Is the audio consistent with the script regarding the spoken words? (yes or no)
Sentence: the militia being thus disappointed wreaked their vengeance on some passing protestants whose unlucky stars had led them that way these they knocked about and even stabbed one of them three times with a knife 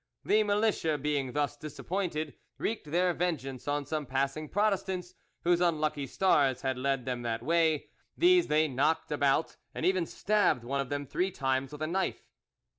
yes